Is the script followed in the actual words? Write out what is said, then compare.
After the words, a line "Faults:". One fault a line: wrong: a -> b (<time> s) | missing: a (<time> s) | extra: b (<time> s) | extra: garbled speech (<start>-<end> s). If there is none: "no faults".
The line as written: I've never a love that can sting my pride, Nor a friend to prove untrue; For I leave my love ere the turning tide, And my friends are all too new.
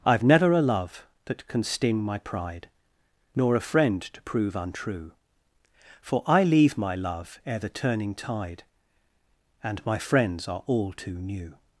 I've never a love that can sting my pride, Nor a friend to prove untrue; For I leave my love ere the turning tide, And my friends are all too new.
Faults:
no faults